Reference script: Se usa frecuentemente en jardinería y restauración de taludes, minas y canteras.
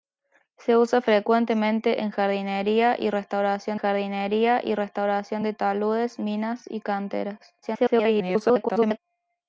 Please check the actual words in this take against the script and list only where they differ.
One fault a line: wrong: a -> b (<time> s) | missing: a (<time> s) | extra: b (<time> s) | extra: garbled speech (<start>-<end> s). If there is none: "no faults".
extra: jardinería y restauración (3.7 s)
extra: garbled speech (7.6-9.0 s)